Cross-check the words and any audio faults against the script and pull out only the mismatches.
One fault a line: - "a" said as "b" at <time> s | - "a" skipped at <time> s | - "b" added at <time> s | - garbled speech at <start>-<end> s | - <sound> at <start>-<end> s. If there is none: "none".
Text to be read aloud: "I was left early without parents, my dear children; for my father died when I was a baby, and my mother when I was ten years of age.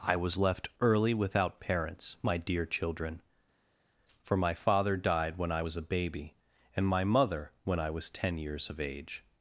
none